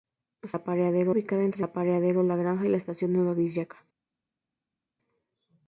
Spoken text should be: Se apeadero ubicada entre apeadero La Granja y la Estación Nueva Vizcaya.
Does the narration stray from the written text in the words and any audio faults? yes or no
no